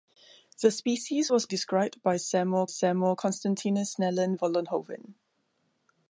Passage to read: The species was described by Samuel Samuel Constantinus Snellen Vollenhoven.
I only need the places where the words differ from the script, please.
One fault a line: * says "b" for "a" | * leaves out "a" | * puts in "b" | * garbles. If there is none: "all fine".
all fine